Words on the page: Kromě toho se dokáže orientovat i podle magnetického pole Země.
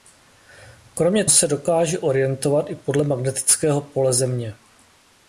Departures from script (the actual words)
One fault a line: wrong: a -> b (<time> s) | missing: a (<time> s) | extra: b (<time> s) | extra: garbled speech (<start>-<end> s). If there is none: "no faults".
missing: toho (1.2 s)